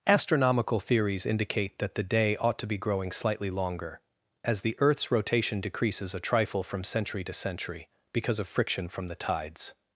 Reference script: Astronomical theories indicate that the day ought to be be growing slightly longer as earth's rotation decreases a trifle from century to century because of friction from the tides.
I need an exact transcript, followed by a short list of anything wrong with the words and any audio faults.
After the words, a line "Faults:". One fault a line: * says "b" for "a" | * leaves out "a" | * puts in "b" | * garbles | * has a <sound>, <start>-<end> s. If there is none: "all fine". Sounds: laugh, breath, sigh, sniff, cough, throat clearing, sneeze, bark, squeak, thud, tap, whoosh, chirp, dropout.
Astronomical theories indicate that the day ought to be growing slightly longer as the earth's rotation decreases a trifle from century to century because of friction from the tides.
Faults:
* leaves out "be"
* puts in "the"